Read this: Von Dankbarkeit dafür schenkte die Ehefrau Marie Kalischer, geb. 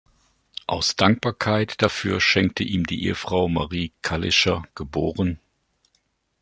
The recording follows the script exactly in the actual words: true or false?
false